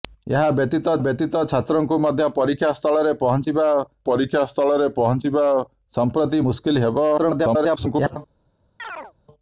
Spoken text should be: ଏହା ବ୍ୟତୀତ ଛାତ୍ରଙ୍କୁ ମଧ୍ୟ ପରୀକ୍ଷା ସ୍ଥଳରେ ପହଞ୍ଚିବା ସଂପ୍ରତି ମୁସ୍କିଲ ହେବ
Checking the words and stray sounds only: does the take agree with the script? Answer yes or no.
no